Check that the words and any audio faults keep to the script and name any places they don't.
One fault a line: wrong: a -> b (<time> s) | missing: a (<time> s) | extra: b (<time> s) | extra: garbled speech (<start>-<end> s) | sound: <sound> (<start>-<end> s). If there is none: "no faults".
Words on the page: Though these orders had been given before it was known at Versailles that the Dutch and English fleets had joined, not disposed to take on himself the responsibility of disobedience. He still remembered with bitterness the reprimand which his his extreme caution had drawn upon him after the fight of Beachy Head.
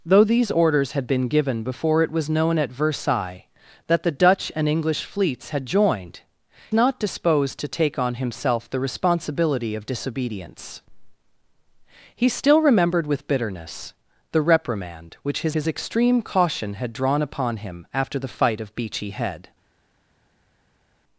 no faults